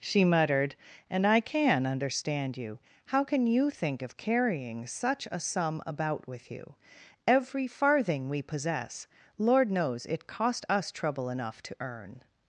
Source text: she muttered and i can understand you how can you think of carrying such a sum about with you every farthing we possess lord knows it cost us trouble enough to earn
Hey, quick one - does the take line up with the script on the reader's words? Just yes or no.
yes